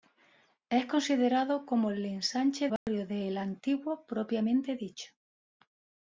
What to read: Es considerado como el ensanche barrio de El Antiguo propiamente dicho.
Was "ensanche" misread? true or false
false